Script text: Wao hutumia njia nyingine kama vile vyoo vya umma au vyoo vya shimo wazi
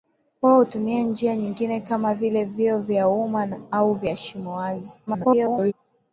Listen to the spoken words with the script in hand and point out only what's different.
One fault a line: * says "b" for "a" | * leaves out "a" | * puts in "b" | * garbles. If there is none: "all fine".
* leaves out "vyoo"
* garbles